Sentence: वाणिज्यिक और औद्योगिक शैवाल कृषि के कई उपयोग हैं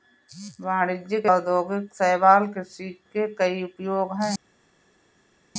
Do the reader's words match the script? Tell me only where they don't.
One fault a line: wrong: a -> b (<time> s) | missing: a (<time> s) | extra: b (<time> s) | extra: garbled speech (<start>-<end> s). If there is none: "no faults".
missing: और (1.3 s)